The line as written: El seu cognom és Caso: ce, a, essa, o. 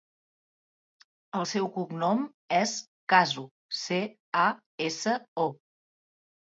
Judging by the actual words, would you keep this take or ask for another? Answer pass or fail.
pass